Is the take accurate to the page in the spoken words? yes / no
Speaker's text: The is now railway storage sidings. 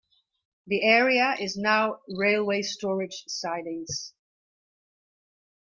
no